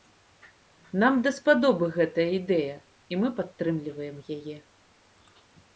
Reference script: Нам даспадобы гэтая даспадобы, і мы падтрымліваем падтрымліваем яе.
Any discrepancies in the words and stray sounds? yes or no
yes